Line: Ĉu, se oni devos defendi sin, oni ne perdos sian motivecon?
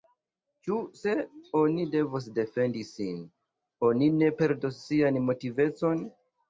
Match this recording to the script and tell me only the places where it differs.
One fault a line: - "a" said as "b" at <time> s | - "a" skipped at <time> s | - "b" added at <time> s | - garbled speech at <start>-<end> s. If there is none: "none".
none